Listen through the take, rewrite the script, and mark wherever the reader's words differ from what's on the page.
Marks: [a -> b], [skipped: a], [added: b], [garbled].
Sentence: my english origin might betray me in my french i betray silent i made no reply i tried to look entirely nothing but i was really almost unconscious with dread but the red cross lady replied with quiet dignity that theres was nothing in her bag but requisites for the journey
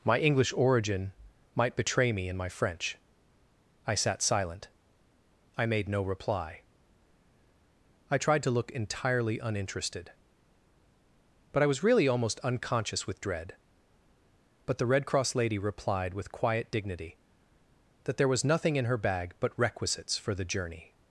my english origin might betray me in my french i [betray -> sat] silent i made no reply i tried to look entirely [nothing -> uninterested] but i was really almost unconscious with dread but the red cross lady replied with quiet dignity that [theres -> there] was nothing in her bag but requisites for the journey